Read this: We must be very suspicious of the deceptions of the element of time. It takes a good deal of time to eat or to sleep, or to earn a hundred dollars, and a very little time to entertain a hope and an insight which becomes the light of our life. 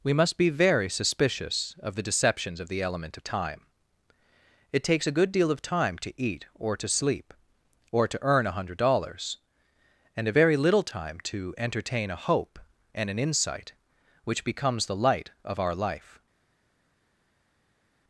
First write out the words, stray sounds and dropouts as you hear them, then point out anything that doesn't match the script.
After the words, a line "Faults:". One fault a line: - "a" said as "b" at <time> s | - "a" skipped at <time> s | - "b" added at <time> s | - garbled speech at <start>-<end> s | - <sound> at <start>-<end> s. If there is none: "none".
We must be very suspicious of the deceptions of the element of time. It takes a good deal of time to eat or to sleep, or to earn a hundred dollars, and a very little time to entertain a hope and an insight which becomes the light of our life.
Faults:
none